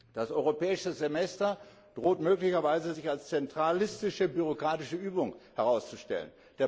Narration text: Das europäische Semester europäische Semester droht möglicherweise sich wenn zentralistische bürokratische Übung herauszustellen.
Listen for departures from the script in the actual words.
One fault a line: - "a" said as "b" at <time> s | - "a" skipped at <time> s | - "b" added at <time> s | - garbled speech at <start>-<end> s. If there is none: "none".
- "europäische Semester" skipped at 1.6 s
- "wenn" said as "als" at 3.1 s